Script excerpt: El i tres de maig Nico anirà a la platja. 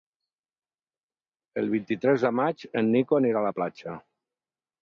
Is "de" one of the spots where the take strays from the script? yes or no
no